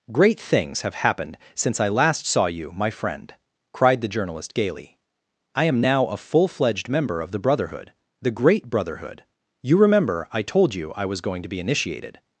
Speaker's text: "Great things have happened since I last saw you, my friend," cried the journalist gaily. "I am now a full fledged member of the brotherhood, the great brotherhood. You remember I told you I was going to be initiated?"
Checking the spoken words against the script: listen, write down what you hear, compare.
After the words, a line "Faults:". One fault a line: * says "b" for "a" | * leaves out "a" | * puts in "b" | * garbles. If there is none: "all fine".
"Great things have happened since I last saw you, my friend," cried the journalist gaily. "I am now a full fledged member of the brotherhood, the great brotherhood. You remember I told you I was going to be initiated?"
Faults:
all fine